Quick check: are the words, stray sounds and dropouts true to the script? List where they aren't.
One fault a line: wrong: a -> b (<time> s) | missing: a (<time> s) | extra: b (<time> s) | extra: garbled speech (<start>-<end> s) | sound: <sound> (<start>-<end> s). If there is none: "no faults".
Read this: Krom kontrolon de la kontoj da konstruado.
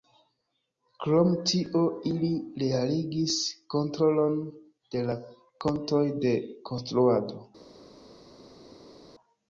extra: tio ili realigis (1.5 s)
wrong: da -> de (6.2 s)